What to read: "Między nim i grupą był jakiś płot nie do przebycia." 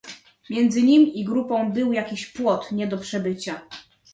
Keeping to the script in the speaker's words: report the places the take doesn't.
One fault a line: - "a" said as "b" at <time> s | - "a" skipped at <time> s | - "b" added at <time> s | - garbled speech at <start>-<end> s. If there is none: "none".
none